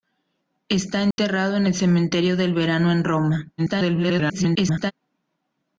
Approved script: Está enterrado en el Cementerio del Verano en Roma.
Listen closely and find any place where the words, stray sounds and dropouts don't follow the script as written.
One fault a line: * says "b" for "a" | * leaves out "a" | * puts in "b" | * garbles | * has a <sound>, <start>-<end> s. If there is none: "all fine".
* has a dropout, 1.1-1.2 s
* garbles